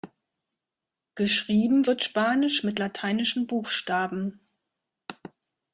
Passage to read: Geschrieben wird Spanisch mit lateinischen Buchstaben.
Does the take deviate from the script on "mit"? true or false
false